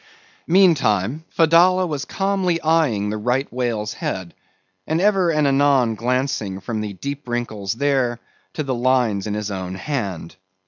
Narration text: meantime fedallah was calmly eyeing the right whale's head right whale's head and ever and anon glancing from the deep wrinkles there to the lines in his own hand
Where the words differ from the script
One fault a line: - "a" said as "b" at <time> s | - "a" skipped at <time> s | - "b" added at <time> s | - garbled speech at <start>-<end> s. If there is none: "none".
- "right whale's head" skipped at 4.3 s